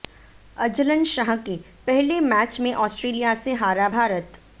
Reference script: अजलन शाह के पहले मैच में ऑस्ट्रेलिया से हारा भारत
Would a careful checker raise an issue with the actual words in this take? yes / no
no